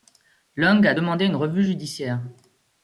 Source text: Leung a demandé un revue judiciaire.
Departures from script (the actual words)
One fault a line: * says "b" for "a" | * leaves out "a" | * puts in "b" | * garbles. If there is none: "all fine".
* says "une" for "un"